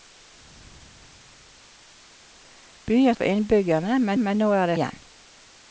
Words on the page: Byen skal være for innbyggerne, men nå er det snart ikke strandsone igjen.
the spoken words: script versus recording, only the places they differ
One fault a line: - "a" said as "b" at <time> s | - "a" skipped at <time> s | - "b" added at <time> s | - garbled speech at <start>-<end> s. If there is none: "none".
- "skal være" skipped at 3.1 s
- "men" added at 4.2 s
- "snart ikke strandsone" skipped at 4.8 s